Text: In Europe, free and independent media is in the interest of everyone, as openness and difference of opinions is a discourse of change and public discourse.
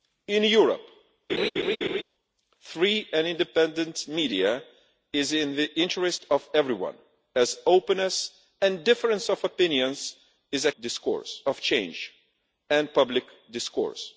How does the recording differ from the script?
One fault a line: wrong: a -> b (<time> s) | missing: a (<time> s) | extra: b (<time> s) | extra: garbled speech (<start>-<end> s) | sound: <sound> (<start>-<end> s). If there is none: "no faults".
sound: laugh (1.3-2.0 s)